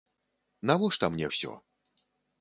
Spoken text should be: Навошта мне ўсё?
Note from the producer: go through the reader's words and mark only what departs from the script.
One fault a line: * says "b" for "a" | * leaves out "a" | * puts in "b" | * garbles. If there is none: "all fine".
all fine